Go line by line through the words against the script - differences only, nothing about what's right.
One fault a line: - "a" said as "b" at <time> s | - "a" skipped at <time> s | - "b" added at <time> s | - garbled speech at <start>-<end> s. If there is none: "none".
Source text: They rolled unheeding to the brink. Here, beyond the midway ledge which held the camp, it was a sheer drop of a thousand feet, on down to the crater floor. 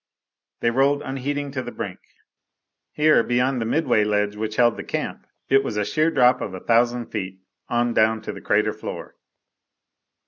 none